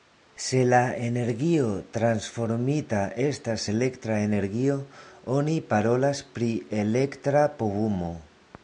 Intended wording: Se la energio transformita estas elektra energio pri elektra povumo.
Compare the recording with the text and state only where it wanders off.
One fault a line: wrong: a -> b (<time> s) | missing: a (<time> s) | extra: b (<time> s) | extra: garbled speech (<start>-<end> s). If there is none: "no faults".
extra: oni parolas (5.4 s)